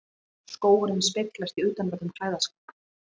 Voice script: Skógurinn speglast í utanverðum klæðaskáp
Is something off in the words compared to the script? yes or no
no